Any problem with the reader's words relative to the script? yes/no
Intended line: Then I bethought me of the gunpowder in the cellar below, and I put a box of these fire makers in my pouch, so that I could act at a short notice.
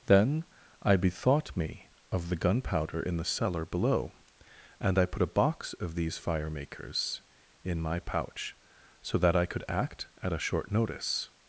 no